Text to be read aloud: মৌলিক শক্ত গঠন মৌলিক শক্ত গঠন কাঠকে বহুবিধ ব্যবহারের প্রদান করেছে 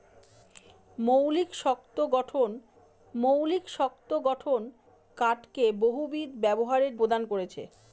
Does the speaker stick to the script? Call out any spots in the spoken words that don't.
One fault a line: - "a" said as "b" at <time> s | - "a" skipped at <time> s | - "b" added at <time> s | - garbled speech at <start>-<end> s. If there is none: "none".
none